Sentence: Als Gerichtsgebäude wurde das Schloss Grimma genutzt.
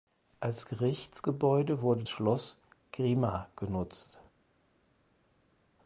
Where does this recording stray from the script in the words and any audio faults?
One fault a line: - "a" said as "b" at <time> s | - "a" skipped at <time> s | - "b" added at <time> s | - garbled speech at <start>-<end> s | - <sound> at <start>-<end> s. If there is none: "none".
- "das" skipped at 2.0 s